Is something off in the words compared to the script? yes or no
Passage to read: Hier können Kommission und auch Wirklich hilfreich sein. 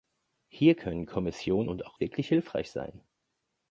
no